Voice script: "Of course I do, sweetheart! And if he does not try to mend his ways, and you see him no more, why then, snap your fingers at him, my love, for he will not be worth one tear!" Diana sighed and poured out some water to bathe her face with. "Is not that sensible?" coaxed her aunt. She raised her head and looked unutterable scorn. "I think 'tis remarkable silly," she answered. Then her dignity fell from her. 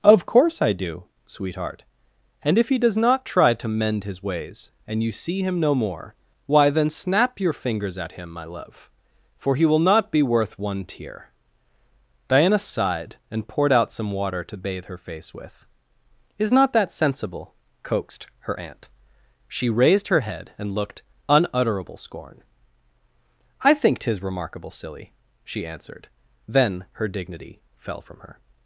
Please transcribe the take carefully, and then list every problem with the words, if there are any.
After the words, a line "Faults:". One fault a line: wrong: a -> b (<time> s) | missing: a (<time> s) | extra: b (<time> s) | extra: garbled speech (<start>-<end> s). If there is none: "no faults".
"Of course I do, sweetheart! And if he does not try to mend his ways, and you see him no more, why then, snap your fingers at him, my love, for he will not be worth one tear!" Diana sighed and poured out some water to bathe her face with. "Is not that sensible?" coaxed her aunt. She raised her head and looked unutterable scorn. "I think 'tis remarkable silly," she answered. Then her dignity fell from her.
Faults:
no faults